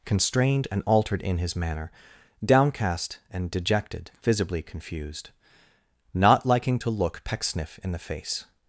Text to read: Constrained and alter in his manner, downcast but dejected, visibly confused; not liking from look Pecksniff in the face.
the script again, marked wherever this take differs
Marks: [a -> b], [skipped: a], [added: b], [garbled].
Constrained and [alter -> altered] in his manner, downcast [but -> and] dejected, visibly confused; not liking [from -> to] look Pecksniff in the face.